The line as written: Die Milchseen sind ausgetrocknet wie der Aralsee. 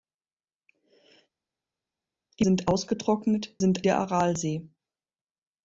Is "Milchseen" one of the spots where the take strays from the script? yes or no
yes